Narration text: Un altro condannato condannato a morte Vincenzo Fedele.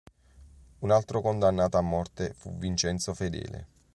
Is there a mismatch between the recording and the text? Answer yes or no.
yes